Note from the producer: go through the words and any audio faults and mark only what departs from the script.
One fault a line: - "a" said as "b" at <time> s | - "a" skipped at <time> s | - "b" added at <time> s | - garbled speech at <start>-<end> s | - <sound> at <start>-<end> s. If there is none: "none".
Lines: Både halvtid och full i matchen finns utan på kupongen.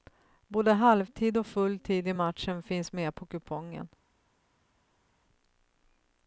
- "tid" added at 1.8 s
- "utan" said as "med" at 2.9 s